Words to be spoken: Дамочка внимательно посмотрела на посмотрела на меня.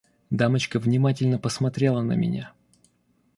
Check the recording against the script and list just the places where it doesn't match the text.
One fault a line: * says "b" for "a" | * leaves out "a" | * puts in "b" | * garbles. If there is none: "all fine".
* leaves out "посмотрела на"